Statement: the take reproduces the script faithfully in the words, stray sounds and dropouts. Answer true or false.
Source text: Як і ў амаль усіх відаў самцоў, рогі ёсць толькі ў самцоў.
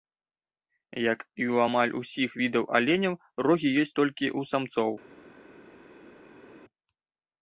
false